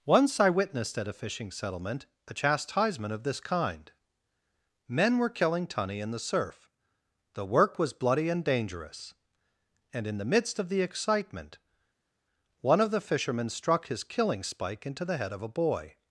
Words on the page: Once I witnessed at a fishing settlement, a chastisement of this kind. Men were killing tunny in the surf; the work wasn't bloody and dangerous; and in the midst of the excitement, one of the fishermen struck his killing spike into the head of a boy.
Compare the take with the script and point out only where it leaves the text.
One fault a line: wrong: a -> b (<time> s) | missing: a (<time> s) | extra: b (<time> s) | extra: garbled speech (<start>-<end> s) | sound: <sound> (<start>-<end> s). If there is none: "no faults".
wrong: wasn't -> was (7.8 s)